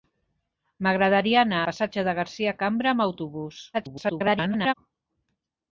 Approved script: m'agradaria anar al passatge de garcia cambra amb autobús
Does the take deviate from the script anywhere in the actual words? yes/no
yes